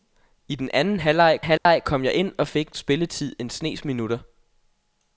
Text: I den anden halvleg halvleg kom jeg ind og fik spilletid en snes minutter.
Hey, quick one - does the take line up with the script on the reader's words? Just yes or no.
yes